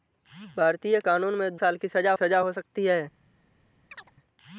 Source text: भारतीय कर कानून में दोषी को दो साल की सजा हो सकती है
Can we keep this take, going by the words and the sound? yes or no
no